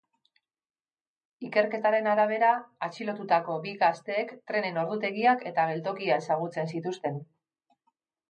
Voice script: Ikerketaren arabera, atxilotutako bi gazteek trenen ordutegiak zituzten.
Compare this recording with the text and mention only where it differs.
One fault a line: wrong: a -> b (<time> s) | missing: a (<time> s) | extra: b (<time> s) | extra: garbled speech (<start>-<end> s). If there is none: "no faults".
extra: eta geltokia ezagutzen (5.5 s)